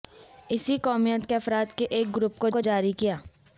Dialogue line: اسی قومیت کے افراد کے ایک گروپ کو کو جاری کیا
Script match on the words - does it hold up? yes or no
yes